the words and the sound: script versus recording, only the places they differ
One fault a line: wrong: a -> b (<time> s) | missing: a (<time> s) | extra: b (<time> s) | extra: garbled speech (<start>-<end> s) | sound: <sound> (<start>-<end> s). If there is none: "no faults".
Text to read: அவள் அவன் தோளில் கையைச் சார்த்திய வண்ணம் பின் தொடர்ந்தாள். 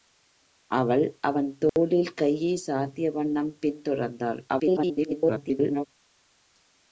sound: dropout (1.7-1.8 s)
extra: garbled speech (4.5-5.9 s)